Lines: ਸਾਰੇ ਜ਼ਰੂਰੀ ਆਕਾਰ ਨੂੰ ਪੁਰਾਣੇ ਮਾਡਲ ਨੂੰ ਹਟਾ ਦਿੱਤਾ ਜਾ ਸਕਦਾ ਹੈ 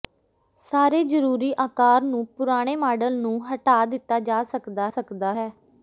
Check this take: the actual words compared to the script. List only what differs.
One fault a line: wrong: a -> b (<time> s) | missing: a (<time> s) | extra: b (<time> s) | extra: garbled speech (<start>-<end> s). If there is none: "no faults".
extra: ਸਕਦਾ (4.9 s)